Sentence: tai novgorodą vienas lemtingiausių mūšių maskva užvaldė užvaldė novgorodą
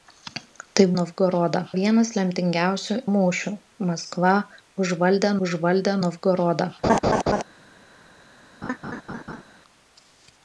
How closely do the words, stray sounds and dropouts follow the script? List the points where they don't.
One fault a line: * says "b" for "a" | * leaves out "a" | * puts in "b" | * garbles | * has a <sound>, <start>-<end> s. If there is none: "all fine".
* has a laugh, 6.8-7.4 s
* has a laugh, 8.6-9.4 s